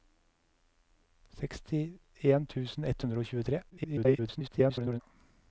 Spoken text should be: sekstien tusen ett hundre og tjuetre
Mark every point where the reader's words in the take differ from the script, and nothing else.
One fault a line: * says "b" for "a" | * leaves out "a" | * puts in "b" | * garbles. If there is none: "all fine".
* garbles